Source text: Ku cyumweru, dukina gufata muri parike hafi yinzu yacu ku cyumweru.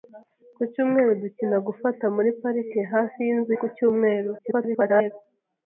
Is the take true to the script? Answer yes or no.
no